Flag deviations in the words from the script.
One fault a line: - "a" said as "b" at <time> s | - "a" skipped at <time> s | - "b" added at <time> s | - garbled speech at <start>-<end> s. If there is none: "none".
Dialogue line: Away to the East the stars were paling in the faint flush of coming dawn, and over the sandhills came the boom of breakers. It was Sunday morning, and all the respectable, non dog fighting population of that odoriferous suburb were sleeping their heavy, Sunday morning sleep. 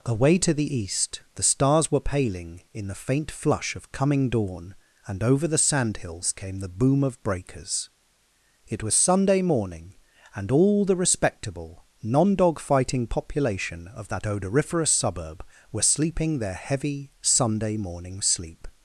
none